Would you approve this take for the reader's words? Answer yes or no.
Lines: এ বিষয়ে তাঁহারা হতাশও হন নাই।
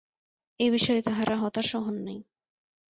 yes